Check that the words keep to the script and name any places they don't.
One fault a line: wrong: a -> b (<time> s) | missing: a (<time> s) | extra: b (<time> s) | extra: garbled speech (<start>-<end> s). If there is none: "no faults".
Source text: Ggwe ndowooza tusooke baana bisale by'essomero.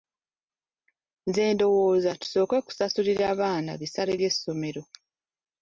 wrong: Ggwe -> Nze (1.3 s)
extra: kusasulira (2.7 s)